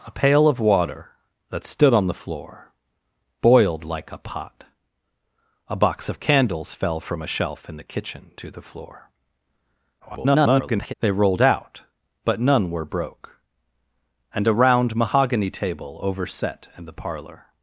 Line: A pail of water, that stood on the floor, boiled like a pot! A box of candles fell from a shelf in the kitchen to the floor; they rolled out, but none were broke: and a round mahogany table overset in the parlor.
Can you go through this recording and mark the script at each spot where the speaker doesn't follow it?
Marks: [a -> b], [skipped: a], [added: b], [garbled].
A pail of water, that stood on the floor, boiled like a pot! A box of candles fell from a shelf in the kitchen to the floor; [garbled] they rolled out, but none were broke: and a round mahogany table overset in the parlor.